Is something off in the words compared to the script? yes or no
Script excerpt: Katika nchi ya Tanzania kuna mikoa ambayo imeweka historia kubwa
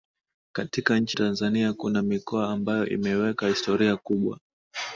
yes